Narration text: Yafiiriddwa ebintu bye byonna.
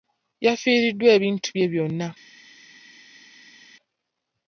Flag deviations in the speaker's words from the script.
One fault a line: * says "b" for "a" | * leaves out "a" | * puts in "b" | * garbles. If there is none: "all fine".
all fine